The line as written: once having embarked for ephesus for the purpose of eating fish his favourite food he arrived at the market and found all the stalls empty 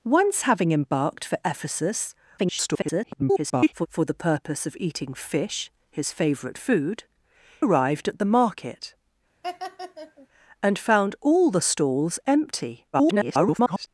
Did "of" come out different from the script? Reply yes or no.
no